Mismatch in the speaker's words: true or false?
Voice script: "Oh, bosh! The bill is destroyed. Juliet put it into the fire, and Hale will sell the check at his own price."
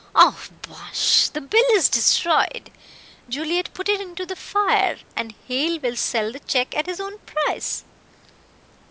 false